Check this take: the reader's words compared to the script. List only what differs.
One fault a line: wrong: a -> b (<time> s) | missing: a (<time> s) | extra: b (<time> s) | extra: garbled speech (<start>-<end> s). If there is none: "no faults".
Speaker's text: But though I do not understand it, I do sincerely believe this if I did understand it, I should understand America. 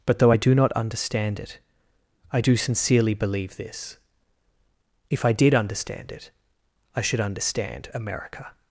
no faults